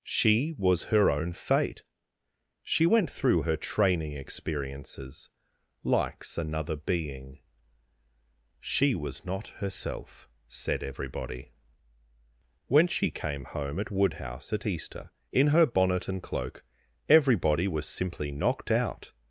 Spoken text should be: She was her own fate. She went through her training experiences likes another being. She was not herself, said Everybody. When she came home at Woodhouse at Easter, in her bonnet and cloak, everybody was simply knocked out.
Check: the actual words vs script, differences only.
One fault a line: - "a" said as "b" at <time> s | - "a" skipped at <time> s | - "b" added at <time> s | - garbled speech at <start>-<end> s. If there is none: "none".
none